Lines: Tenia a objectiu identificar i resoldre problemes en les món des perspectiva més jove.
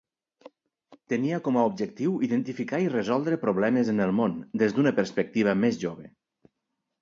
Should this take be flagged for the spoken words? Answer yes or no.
yes